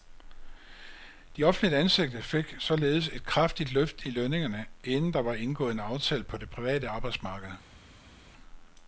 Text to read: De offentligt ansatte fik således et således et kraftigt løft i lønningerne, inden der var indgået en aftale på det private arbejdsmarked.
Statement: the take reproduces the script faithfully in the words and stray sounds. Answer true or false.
false